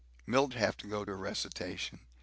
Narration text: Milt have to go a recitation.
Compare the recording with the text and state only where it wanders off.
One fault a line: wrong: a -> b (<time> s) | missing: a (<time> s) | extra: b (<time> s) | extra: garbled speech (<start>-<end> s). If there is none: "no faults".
no faults